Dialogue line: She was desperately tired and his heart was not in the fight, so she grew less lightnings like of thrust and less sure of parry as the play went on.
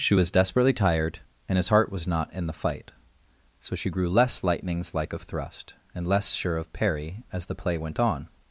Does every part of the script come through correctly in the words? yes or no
yes